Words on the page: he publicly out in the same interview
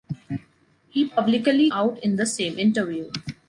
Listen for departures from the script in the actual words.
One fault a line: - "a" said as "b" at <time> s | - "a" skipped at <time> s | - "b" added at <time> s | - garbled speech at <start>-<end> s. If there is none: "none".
none